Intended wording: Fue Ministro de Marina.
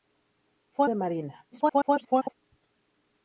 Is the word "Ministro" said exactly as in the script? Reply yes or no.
no